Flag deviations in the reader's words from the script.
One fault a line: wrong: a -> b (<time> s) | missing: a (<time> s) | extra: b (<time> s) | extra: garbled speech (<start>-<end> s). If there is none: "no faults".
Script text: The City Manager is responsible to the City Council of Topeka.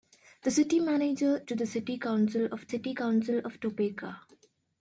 wrong: is responsible to the -> to the City Council of (1.5 s)